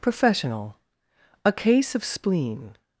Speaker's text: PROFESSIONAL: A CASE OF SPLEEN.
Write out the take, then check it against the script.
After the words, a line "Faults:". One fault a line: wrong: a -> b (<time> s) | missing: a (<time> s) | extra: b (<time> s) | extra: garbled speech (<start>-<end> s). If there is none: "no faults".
PROFESSIONAL: A CASE OF SPLEEN.
Faults:
no faults